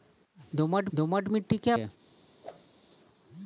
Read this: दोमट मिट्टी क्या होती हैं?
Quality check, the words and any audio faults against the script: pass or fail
fail